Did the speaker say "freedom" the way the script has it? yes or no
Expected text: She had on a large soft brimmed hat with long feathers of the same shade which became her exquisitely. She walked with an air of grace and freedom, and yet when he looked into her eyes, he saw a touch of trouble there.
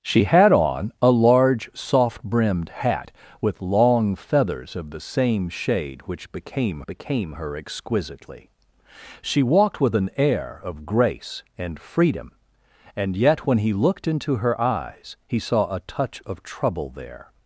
yes